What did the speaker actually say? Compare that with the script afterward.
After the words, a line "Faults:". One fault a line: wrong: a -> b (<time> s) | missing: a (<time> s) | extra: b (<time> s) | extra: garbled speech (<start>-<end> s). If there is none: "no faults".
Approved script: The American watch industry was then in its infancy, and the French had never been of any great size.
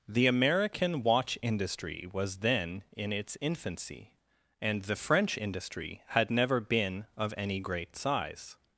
The American watch industry was then in its infancy, and the French industry had never been of any great size.
Faults:
extra: industry (5.4 s)